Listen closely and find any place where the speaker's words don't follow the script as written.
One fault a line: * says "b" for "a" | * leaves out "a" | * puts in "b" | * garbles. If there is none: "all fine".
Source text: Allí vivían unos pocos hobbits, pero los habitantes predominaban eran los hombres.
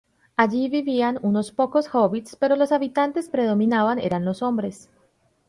all fine